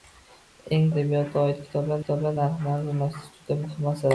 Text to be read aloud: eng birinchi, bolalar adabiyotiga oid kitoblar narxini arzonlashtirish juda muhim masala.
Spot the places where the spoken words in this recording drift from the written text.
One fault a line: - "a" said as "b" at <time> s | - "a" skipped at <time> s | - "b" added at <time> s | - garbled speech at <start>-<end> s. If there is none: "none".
- "birinchi bolalar" skipped at 0.8 s
- "kitoblar" added at 2.0 s